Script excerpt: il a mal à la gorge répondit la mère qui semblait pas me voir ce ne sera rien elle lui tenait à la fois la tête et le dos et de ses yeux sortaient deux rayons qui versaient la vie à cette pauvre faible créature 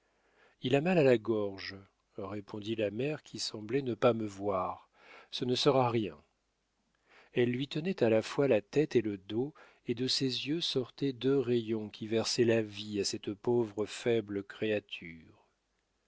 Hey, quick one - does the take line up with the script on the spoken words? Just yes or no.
no